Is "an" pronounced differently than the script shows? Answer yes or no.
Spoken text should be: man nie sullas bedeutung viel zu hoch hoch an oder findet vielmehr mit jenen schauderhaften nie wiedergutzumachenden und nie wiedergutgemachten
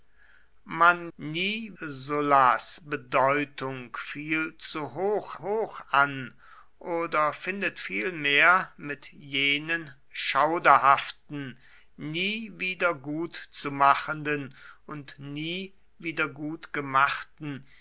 no